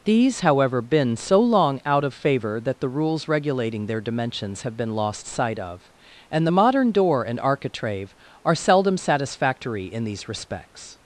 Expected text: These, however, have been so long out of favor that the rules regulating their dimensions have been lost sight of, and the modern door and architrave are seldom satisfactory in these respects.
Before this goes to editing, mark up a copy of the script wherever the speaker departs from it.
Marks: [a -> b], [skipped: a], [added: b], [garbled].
These, however, [skipped: have] been so long out of favor that the rules regulating their dimensions have been lost sight of, and the modern door and architrave are seldom satisfactory in these respects.